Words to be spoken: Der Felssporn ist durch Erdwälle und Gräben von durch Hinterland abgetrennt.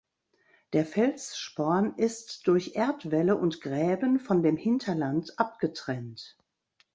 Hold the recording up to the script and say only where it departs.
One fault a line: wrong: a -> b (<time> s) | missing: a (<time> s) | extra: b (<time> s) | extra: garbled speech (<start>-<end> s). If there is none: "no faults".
wrong: durch -> dem (4.4 s)